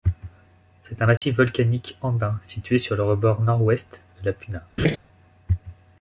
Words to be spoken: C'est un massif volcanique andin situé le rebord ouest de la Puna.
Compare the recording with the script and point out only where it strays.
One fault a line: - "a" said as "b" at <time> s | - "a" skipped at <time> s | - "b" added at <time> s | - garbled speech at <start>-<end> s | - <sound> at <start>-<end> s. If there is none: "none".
- dropout at 1.2-1.2 s
- "sur" added at 2.8 s
- "nord" added at 3.4 s
- laugh at 4.8-5.0 s